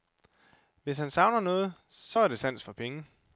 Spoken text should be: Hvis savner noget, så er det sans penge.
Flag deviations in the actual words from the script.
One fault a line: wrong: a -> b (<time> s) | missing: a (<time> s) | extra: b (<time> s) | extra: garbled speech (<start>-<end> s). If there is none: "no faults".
extra: han (1.0 s)
extra: for (2.6 s)